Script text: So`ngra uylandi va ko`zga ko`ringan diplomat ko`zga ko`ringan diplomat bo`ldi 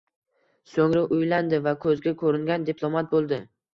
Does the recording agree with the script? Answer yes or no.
no